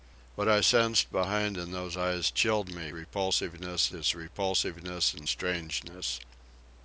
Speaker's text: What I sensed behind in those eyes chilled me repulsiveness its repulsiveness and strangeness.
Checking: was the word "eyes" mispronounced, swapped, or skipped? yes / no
no